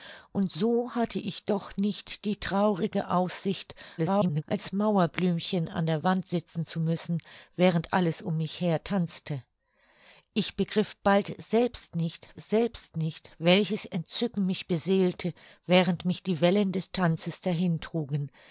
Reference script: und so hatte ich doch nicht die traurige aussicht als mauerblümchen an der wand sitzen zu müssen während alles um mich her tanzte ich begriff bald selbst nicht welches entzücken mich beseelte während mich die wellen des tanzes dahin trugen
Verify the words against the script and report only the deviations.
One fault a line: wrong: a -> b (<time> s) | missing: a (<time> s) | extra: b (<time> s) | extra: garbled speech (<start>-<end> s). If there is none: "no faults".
extra: garbled speech (4.0-4.4 s)
extra: selbst nicht (12.4 s)